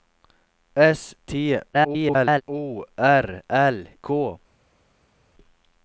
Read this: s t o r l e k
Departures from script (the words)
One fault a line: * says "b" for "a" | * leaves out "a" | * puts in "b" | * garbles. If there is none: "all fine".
* garbles
* leaves out "e"